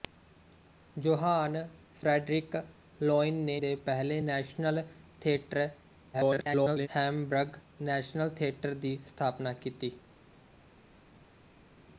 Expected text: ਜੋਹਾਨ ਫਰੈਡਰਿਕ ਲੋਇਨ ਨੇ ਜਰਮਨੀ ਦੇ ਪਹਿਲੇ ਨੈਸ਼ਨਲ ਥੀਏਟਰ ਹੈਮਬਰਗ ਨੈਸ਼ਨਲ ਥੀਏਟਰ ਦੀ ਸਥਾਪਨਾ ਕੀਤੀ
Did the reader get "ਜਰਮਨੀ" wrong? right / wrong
wrong